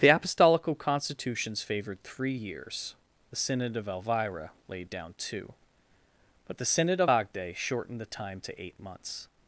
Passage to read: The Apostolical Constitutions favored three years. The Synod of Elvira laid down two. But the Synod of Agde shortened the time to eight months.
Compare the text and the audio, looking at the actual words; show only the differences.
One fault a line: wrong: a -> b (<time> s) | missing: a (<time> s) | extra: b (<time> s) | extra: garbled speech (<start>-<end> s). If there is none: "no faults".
no faults